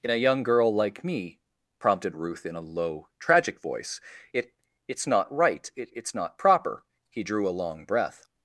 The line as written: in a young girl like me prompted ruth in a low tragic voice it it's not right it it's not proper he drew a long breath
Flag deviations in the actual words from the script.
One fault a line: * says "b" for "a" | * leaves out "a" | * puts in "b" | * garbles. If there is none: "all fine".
all fine